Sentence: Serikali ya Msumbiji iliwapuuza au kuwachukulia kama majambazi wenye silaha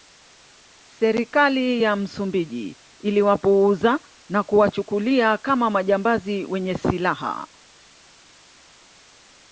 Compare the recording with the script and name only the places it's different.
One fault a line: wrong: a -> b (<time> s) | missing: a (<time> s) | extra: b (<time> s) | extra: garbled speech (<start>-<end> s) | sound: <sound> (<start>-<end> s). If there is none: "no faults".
wrong: au -> na (4.3 s)